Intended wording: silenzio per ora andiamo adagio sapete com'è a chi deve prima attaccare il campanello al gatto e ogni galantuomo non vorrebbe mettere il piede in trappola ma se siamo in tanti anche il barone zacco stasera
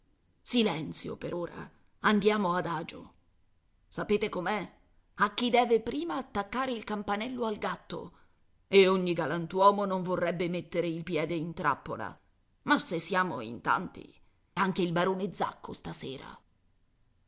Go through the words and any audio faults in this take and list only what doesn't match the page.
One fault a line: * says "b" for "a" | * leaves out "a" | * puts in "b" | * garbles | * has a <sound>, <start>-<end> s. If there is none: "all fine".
all fine